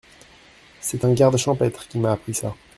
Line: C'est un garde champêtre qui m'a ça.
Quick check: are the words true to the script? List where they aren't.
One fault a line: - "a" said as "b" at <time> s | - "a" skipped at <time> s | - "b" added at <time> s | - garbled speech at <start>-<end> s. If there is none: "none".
- "appris" added at 2.1 s